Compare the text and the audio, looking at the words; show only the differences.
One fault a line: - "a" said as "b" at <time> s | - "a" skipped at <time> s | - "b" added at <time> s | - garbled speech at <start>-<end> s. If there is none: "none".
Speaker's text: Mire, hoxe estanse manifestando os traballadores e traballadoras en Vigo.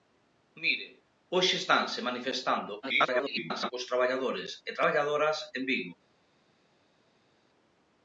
- garbled speech at 2.8-3.7 s